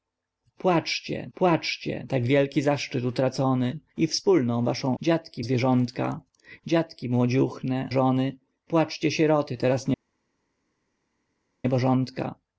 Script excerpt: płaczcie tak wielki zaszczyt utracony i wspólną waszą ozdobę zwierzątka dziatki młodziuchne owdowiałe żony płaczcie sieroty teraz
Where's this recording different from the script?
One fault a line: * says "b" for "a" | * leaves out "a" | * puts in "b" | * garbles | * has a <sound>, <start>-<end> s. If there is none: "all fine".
* puts in "płaczcie"
* says "dziatki" for "ozdobę"
* leaves out "owdowiałe"